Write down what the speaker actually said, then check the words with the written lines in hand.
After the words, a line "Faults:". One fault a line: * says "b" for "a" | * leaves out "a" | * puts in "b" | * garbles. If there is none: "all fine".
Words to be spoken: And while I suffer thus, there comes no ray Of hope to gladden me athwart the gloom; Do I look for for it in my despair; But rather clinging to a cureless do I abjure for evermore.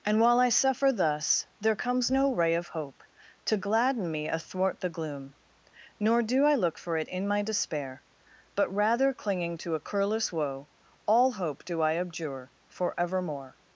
And while I suffer thus, there comes no ray Of hope to gladden me athwart the gloom; Nor do I look for it in my despair; But rather clinging to a cureless woe, All hope do I abjure for evermore.
Faults:
* puts in "Nor"
* leaves out "for"
* puts in "woe All hope"